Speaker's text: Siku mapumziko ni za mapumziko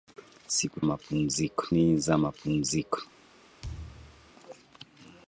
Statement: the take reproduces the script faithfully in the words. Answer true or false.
true